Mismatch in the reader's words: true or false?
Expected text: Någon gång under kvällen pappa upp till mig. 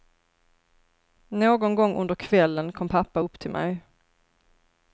true